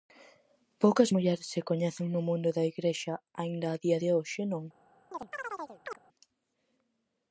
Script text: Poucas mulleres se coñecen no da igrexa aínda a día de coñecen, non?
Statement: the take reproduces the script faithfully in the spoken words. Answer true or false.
false